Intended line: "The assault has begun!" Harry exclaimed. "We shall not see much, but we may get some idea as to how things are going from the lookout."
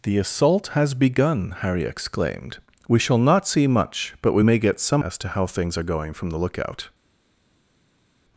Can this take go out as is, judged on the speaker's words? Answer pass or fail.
fail